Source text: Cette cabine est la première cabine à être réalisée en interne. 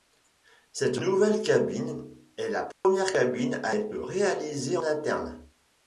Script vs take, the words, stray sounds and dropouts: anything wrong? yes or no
yes